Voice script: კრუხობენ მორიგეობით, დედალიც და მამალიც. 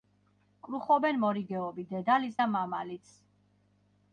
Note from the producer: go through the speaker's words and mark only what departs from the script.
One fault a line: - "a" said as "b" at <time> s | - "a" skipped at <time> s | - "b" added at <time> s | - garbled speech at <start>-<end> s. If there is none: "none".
none